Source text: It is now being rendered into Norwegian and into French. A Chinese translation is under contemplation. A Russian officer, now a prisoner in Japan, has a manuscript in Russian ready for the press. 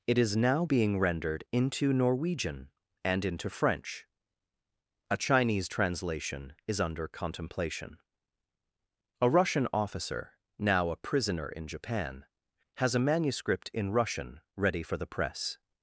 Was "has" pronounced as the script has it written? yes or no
yes